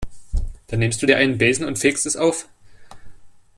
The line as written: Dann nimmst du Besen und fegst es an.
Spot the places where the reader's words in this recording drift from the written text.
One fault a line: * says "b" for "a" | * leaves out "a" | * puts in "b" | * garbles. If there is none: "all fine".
* puts in "dir einen"
* says "auf" for "an"